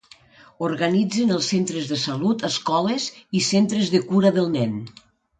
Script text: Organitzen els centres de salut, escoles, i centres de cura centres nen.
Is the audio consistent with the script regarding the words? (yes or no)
no